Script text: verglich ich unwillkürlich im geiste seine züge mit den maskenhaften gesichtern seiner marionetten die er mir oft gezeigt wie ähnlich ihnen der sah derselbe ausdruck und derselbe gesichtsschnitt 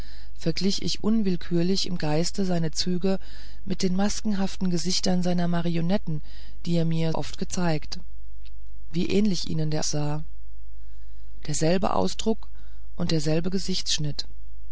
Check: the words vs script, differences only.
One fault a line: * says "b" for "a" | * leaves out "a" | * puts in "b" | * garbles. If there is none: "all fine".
all fine